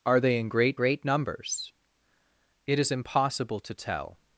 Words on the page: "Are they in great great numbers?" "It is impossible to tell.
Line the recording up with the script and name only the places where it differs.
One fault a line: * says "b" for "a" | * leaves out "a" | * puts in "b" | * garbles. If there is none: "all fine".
all fine